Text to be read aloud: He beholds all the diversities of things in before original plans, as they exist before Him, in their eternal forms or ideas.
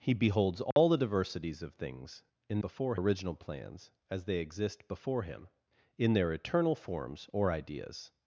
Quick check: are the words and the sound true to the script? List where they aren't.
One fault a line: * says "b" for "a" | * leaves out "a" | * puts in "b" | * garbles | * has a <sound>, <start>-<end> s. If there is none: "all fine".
* has a dropout, 0.7-0.8 s